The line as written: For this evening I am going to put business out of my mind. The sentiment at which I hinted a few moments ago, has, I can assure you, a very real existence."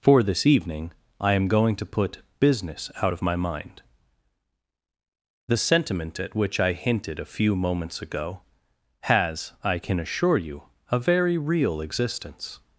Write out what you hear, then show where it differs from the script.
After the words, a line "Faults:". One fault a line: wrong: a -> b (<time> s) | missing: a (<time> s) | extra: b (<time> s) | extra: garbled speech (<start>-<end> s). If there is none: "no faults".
For this evening I am going to put business out of my mind. The sentiment at which I hinted a few moments ago, has, I can assure you, a very real existence."
Faults:
no faults